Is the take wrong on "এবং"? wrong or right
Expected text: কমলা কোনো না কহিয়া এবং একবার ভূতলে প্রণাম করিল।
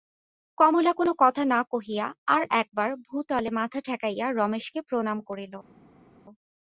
wrong